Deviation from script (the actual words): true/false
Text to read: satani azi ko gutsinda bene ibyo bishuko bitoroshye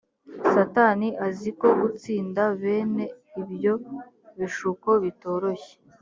false